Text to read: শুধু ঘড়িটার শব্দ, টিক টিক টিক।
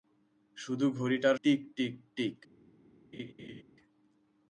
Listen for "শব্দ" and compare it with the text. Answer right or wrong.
wrong